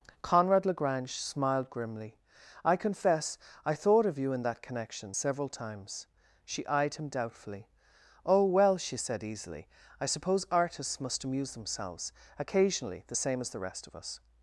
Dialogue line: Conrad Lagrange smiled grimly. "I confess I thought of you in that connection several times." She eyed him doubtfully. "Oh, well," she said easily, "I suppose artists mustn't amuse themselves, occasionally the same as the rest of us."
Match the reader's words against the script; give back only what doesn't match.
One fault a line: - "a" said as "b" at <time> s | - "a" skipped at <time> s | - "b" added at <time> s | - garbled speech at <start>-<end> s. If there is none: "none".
- "mustn't" said as "must" at 11.0 s